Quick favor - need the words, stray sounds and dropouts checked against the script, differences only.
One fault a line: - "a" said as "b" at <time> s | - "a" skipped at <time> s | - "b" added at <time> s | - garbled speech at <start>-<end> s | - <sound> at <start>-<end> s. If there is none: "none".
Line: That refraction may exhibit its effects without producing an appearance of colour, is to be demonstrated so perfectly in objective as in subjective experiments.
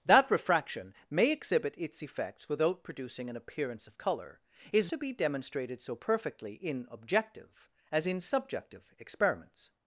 none